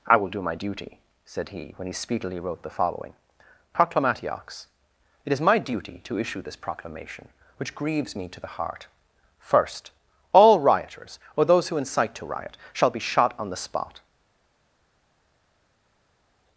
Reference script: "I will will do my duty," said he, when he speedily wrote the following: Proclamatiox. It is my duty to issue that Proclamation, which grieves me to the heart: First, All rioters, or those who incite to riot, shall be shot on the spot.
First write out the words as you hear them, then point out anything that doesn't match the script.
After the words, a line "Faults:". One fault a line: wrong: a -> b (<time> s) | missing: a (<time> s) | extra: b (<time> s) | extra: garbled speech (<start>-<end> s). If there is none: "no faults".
"I will do my duty," said he, when he speedily wrote the following: Proclamatiox. It is my duty to issue this Proclamation, which grieves me to the heart: First, All rioters, or those who incite to riot, shall be shot on the spot.
Faults:
missing: will (0.3 s)
wrong: that -> this (6.4 s)